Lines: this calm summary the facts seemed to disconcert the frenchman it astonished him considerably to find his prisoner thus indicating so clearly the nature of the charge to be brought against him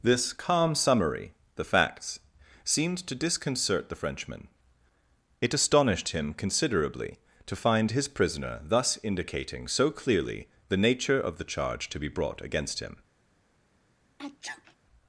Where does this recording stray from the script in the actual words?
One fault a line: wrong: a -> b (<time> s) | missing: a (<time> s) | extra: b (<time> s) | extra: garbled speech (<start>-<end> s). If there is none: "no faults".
no faults